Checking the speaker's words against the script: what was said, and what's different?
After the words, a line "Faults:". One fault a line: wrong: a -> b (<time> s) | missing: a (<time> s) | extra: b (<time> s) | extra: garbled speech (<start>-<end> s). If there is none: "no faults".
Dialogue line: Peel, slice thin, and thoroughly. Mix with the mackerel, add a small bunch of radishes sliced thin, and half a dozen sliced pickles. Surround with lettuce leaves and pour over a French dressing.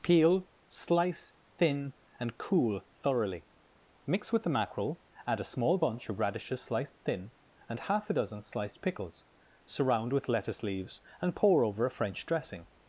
Peel, slice thin, and cool thoroughly. Mix with the mackerel, add a small bunch of radishes sliced thin, and half a dozen sliced pickles. Surround with lettuce leaves and pour over a French dressing.
Faults:
extra: cool (2.4 s)